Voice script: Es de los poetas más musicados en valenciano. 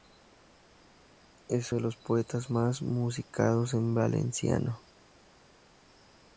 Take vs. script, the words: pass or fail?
pass